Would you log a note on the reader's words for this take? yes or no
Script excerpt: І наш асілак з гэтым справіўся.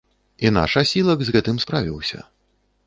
no